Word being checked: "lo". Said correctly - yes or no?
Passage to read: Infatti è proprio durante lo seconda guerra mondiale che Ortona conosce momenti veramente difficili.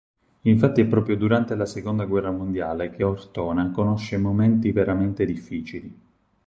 no